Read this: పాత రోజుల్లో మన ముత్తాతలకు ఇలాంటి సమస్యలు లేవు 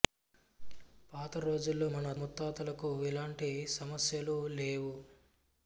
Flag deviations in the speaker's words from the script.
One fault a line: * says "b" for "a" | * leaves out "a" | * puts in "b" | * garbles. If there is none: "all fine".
all fine